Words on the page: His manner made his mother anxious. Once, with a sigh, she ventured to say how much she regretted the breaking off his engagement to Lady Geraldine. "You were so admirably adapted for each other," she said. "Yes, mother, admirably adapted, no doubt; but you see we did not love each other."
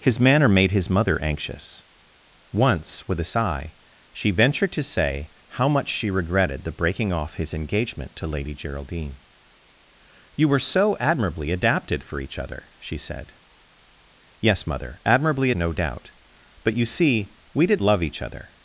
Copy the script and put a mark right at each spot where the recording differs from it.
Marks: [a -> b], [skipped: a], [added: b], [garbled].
His manner made his mother anxious. Once, with a sigh, she ventured to say how much she regretted the breaking off his engagement to Lady Geraldine. "You were so admirably adapted for each other," she said. "Yes, mother, admirably [skipped: adapted,] no doubt; but you see we did [skipped: not] love each other."